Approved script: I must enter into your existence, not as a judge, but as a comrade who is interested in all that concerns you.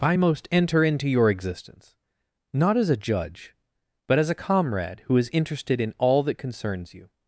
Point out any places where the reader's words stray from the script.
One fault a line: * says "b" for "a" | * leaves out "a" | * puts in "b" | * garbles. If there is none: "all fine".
* says "most" for "must"